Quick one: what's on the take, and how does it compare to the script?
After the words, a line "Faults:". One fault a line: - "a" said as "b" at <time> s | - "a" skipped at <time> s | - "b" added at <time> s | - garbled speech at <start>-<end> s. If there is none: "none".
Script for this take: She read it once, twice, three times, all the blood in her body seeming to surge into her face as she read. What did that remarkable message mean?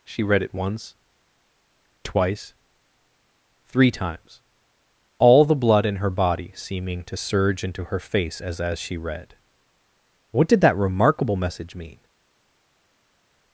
She read it once, twice, three times, all the blood in her body seeming to surge into her face as as she read. What did that remarkable message mean?
Faults:
- "as" added at 8.6 s